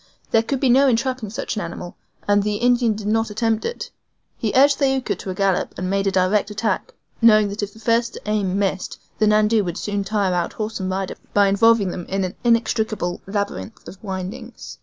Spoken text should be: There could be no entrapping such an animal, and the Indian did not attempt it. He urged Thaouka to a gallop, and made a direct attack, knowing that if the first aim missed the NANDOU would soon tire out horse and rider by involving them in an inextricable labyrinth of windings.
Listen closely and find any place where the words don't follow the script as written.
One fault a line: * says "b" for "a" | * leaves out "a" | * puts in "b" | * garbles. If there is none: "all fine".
all fine